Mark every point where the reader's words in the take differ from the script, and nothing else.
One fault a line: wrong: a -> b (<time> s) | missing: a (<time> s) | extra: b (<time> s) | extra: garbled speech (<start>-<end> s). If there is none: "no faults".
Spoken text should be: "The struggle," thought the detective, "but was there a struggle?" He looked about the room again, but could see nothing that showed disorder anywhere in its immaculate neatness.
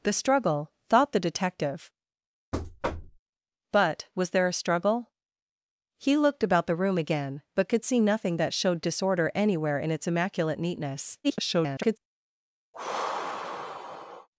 extra: garbled speech (11.2-12.0 s)